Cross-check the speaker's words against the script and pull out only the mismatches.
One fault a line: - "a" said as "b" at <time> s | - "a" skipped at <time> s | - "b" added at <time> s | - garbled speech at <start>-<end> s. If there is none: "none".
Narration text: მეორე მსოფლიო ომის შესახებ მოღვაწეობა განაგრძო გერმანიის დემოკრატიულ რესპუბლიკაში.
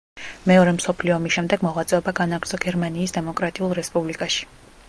- "შესახებ" said as "შემდეგ" at 1.3 s